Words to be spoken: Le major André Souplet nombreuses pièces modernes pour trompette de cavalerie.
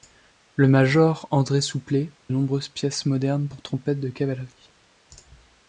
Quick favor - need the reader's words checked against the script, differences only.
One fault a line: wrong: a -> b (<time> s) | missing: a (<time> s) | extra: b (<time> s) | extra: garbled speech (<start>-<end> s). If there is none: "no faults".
no faults